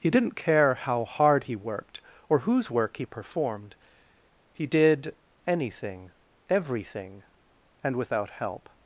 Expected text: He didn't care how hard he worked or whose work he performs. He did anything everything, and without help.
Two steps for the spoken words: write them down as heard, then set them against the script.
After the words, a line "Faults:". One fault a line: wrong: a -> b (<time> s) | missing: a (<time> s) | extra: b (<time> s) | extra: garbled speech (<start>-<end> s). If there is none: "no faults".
He didn't care how hard he worked or whose work he performed. He did anything everything, and without help.
Faults:
wrong: performs -> performed (3.0 s)